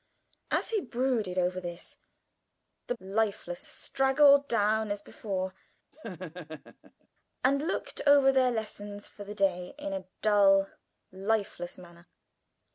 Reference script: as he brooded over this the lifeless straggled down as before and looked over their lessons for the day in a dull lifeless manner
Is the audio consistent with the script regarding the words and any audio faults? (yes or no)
no